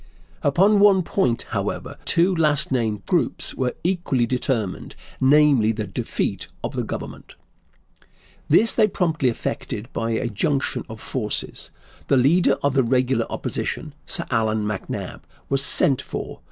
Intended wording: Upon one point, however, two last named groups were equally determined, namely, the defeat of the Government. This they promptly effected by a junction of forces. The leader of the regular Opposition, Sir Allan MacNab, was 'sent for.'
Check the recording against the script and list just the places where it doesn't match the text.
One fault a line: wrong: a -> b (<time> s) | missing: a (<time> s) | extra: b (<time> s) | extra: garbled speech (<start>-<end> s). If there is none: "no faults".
no faults